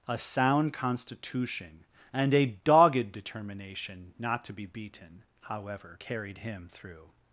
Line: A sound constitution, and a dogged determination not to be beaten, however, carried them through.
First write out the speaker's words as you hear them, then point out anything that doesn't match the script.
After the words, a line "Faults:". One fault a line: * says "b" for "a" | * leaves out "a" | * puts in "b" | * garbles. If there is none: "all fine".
A sound constitution, and a dogged determination not to be beaten, however, carried him through.
Faults:
* says "him" for "them"